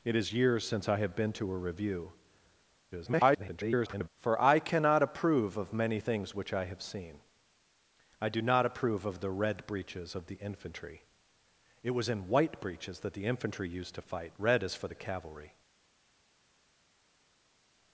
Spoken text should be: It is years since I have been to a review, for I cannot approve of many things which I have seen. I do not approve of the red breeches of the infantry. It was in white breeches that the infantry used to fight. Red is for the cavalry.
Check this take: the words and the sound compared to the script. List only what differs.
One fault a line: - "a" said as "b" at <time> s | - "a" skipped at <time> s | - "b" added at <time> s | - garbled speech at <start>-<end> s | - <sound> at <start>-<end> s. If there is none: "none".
- garbled speech at 2.9-4.1 s